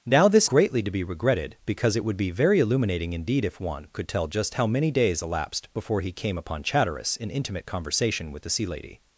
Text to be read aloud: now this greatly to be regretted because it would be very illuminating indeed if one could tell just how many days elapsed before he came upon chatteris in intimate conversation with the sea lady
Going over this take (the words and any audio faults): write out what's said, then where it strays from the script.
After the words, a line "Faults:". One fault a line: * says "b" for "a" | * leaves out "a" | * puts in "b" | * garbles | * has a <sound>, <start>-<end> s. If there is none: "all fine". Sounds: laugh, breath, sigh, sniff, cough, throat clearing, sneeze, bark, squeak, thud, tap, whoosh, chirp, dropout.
now this greatly to be regretted because it would be very illuminating indeed if one could tell just how many days elapsed before he came upon chatteris in intimate conversation with the sea lady
Faults:
all fine